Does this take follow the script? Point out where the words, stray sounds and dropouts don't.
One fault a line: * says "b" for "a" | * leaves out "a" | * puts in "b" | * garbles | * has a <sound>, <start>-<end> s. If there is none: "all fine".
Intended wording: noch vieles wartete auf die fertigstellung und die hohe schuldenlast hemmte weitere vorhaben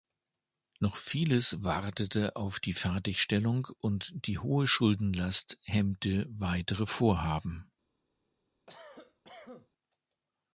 * has a cough, 8.7-9.7 s